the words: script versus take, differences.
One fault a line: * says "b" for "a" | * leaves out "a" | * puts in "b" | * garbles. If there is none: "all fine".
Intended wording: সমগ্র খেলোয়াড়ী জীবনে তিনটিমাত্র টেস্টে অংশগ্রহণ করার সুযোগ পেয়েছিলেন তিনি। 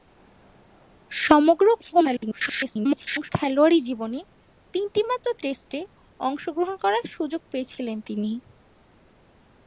* garbles